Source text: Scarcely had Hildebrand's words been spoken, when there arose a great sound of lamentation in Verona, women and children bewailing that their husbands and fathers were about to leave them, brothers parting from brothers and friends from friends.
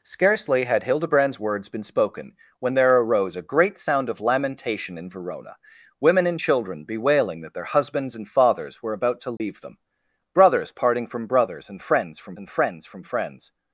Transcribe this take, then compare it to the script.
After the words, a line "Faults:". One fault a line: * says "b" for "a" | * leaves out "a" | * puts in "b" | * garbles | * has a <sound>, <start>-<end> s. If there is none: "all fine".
Scarcely had Hildebrand's words been spoken, when there arose a great sound of lamentation in Verona, women and children bewailing that their husbands and fathers were about to leave them, brothers parting from brothers and friends from and friends from friends.
Faults:
* has a dropout, 9.4-9.4 s
* puts in "and friends from"